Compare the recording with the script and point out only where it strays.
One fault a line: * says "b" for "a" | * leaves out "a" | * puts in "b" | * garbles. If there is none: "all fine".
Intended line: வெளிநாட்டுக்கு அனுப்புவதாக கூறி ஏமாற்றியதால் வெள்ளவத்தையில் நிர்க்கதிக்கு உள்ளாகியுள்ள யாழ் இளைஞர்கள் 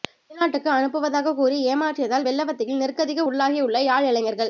all fine